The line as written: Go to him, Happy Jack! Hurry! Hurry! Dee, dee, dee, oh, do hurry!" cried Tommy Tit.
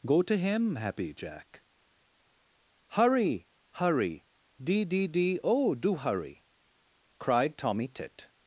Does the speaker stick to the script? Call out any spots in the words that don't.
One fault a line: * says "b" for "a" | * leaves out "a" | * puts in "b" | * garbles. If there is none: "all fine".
all fine